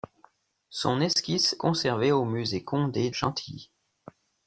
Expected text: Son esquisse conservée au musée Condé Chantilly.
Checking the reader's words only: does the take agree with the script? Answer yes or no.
yes